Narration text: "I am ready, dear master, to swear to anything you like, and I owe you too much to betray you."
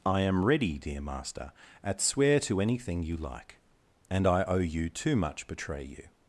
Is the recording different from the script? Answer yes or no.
yes